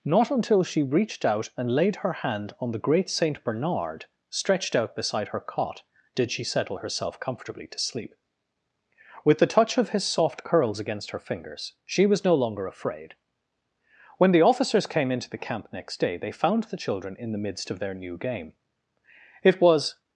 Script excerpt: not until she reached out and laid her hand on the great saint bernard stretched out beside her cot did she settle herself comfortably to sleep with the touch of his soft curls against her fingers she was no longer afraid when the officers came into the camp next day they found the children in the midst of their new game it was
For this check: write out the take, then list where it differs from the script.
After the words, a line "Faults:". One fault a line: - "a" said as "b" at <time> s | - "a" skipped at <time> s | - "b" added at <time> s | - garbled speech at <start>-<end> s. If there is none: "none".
not until she reached out and laid her hand on the great saint bernard stretched out beside her cot did she settle herself comfortably to sleep with the touch of his soft curls against her fingers she was no longer afraid when the officers came into the camp next day they found the children in the midst of their new game it was
Faults:
none